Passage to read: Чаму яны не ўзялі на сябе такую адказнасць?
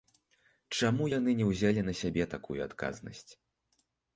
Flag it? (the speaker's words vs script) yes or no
no